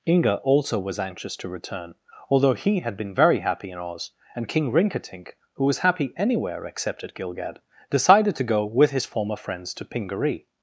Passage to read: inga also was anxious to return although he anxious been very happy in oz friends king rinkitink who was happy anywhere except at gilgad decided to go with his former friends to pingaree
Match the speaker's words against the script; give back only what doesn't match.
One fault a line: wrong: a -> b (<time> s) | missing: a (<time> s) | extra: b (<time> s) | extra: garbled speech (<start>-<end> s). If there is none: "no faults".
wrong: anxious -> had (2.8 s)
wrong: friends -> and (4.3 s)